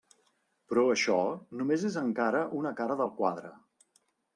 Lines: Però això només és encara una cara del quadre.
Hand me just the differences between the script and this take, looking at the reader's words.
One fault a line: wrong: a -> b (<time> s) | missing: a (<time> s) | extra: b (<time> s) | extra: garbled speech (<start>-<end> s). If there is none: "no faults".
no faults